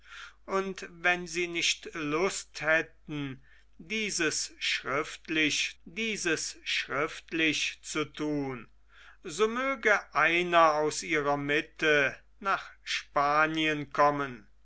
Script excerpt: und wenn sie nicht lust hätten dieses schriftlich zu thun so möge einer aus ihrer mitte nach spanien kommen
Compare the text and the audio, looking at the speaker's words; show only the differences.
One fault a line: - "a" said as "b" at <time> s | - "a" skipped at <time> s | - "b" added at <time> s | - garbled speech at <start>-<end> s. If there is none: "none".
- "dieses schriftlich" added at 5.8 s